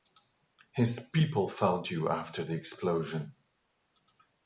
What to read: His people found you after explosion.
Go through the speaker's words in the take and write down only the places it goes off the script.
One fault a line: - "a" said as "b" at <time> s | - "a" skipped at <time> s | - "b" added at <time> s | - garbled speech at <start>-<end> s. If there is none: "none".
- "the" added at 2.4 s